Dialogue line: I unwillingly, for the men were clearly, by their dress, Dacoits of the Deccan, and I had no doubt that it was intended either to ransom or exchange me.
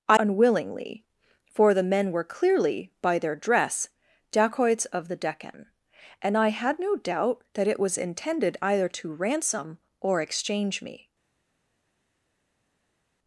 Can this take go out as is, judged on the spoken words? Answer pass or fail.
pass